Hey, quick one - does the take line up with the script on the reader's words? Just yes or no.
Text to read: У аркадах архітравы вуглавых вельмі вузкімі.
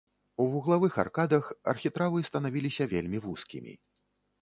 no